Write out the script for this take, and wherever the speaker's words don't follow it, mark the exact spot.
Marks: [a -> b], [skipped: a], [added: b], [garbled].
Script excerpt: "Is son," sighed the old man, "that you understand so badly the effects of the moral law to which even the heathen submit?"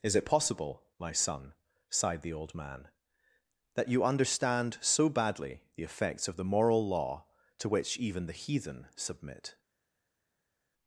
"Is [added: it possible my] son," sighed the old man, "that you understand so badly the effects of the moral law to which even the heathen submit?"